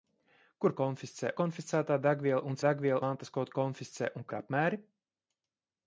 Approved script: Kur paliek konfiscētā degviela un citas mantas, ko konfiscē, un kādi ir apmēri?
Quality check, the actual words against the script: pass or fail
fail